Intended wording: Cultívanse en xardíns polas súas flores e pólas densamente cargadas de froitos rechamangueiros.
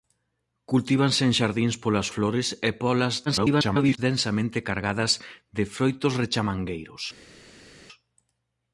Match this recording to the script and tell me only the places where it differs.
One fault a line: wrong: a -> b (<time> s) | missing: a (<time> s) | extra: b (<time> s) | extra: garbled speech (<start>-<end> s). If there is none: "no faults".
missing: súas (2.1 s)
extra: garbled speech (3.3-4.0 s)